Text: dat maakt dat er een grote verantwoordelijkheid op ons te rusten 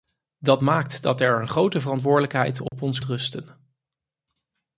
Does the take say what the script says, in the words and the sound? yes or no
no